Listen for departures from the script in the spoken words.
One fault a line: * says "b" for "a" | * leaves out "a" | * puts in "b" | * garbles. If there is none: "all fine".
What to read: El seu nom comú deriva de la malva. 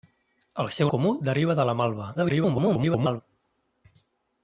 * leaves out "nom"
* garbles